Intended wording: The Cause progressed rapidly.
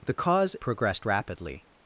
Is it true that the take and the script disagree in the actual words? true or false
false